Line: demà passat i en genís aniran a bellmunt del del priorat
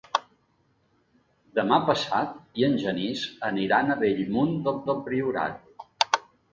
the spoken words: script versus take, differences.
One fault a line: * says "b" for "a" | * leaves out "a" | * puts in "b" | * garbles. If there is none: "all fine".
all fine